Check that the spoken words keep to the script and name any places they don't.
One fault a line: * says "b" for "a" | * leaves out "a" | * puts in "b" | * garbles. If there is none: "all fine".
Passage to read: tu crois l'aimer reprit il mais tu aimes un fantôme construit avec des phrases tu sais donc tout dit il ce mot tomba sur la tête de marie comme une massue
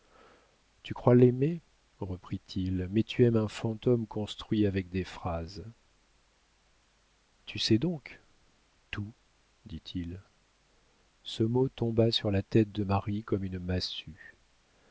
all fine